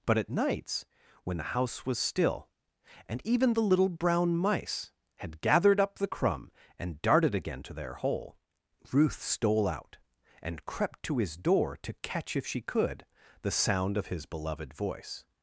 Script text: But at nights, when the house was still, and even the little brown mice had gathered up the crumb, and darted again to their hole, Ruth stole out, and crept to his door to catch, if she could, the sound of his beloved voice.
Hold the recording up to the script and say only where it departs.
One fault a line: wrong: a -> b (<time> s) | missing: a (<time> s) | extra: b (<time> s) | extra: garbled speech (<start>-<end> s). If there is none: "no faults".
no faults